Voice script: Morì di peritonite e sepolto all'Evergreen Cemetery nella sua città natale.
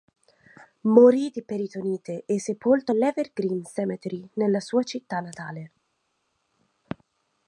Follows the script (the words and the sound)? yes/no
yes